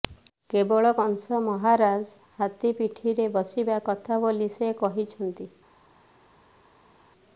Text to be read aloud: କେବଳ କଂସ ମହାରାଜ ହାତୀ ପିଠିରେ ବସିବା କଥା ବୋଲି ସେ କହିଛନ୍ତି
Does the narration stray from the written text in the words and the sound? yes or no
no